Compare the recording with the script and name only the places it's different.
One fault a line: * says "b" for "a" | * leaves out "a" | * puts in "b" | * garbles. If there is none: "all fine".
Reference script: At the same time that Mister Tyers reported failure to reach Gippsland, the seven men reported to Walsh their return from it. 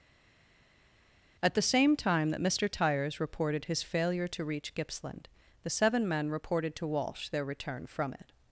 * puts in "his"